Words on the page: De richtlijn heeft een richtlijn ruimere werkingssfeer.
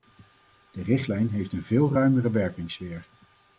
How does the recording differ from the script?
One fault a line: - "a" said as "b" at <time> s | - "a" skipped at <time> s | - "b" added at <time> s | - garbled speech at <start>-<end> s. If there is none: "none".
- "richtlijn" said as "veel" at 1.6 s